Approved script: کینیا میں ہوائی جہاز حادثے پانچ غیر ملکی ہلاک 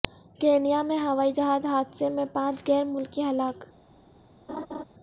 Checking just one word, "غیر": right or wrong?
right